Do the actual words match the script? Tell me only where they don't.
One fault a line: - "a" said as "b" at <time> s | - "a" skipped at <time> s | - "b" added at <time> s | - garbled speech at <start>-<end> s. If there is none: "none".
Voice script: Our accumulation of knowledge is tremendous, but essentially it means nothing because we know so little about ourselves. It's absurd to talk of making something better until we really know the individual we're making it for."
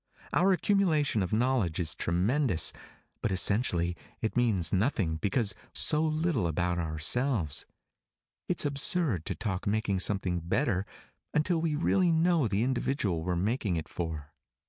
- "we know" skipped at 5.6 s
- "of" skipped at 9.7 s